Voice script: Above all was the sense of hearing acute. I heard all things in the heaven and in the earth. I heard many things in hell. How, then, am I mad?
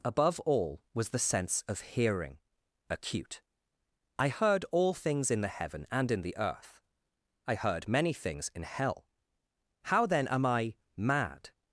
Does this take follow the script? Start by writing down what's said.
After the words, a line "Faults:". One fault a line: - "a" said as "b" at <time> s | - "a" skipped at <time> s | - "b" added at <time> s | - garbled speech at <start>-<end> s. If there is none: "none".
Above all was the sense of hearing acute. I heard all things in the heaven and in the earth. I heard many things in hell. How, then, am I mad?
Faults:
none